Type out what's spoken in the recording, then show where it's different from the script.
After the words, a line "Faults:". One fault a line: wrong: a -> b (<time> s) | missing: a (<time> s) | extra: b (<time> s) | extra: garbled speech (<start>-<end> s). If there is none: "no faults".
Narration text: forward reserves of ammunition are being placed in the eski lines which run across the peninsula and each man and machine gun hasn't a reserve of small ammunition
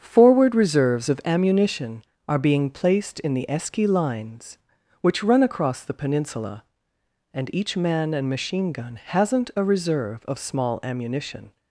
forward reserves of ammunition are being placed in the eski lines which run across the peninsula and each man and machine gun hasn't a reserve of small ammunition
Faults:
no faults